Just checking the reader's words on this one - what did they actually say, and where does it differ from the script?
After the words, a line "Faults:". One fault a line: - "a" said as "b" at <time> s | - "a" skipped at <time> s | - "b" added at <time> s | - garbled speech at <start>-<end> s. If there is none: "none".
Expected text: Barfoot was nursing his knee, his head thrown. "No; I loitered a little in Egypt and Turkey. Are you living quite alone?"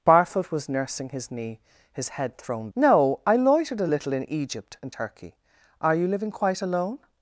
Barfoot was nursing his knee, his head thrown. "No; I loitered a little in Egypt and Turkey. Are you living quite alone?"
Faults:
none